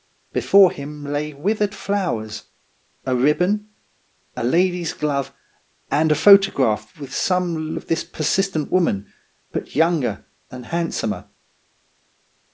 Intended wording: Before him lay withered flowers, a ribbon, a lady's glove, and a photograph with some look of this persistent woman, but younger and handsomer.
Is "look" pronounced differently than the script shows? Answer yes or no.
yes